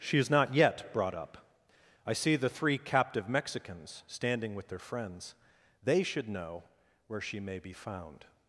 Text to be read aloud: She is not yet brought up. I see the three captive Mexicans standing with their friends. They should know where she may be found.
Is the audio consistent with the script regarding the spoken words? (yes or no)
yes